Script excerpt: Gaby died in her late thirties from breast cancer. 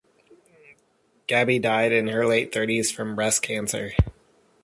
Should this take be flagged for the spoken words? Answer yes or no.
no